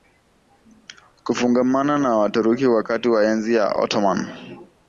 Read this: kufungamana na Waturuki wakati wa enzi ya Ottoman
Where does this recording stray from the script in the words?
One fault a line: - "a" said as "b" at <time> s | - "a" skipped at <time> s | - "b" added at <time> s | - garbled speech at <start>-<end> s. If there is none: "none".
none